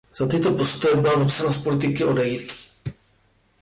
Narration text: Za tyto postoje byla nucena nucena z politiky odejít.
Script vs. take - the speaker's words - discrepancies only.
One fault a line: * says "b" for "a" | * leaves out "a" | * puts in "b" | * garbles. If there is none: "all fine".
* leaves out "nucena"